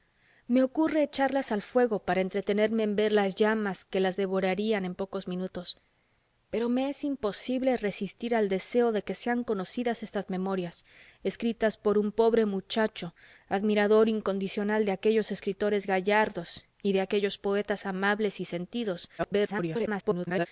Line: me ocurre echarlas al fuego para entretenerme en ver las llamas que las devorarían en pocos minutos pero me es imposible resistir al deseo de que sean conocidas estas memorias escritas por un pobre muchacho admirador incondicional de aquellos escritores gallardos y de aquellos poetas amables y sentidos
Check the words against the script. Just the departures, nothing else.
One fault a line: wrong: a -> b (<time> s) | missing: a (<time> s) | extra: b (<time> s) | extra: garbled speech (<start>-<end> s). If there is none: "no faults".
extra: garbled speech (19.2-20.5 s)